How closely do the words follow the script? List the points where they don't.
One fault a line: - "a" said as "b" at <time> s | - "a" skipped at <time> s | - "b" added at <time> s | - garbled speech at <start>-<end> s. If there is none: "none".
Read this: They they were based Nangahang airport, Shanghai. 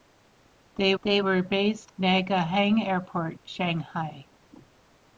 none